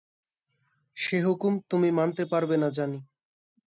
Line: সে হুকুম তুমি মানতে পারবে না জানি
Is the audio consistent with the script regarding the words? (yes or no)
yes